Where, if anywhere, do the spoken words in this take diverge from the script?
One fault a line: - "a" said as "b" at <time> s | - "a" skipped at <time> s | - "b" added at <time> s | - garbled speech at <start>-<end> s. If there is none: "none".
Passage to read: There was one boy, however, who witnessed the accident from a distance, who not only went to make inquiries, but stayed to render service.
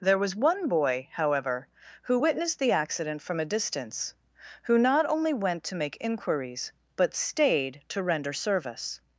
none